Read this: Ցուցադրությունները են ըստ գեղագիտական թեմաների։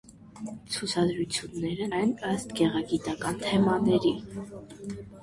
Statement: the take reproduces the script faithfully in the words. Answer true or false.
true